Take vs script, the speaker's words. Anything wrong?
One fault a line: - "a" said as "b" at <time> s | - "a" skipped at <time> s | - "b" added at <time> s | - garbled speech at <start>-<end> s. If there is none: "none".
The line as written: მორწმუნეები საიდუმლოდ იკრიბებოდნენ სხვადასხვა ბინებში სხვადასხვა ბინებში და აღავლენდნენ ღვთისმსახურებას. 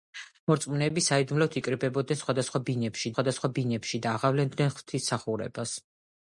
none